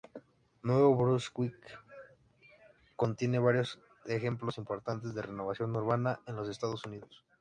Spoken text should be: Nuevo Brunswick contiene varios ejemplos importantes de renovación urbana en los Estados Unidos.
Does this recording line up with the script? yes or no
yes